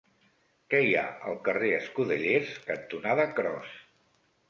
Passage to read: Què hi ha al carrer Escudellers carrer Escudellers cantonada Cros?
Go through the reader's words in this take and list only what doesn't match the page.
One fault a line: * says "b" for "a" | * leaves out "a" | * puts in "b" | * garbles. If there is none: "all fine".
* leaves out "carrer Escudellers"